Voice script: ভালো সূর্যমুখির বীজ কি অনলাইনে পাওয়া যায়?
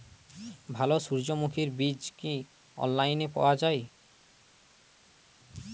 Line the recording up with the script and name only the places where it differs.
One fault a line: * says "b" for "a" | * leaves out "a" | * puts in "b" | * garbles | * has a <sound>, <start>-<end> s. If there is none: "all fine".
all fine